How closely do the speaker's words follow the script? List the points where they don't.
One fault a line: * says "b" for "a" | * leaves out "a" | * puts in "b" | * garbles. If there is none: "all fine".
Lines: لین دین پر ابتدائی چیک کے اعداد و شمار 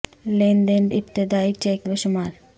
* leaves out "پر"
* leaves out "کے اعداد"